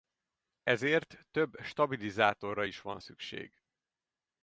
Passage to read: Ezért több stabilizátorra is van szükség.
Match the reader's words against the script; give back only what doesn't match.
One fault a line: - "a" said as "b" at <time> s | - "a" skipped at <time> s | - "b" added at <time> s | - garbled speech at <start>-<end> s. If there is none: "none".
none